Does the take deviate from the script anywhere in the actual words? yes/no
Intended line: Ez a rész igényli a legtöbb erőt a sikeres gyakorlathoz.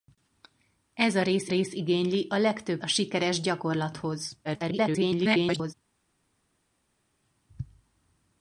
yes